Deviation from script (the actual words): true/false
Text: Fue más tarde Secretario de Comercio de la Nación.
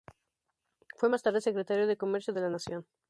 false